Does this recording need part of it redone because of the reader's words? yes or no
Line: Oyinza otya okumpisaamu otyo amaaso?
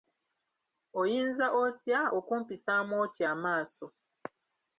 no